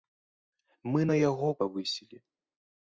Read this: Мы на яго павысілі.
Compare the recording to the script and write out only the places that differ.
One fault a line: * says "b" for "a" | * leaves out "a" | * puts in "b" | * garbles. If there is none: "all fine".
all fine